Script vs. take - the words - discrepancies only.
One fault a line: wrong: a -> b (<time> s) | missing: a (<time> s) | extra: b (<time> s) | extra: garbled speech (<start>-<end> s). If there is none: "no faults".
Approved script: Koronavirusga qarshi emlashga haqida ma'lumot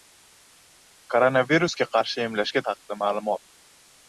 no faults